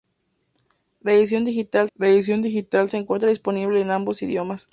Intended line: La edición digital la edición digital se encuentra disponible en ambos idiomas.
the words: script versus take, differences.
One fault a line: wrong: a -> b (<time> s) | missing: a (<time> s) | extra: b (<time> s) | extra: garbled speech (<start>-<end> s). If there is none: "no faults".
no faults